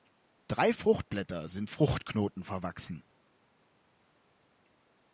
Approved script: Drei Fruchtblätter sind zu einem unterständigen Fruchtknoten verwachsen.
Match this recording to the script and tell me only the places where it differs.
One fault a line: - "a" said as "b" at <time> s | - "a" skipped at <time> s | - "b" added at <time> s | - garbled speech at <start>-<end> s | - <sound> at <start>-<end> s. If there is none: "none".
- "zu einem unterständigen" skipped at 1.7 s